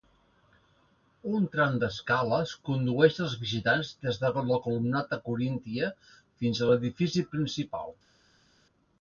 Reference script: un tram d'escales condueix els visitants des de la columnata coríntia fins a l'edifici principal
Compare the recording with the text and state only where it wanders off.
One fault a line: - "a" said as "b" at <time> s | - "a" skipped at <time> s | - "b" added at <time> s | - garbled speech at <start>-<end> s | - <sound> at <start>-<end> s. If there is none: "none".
none